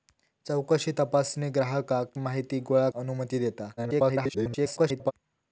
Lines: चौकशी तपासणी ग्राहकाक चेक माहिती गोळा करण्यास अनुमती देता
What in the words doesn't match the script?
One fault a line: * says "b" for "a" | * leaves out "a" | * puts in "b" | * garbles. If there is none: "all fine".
* leaves out "चेक"
* leaves out "करण्यास"
* garbles